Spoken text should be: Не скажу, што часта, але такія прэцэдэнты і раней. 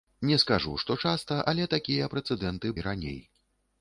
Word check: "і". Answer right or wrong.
right